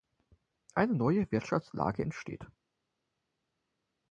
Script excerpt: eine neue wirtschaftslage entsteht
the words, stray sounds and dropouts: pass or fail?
pass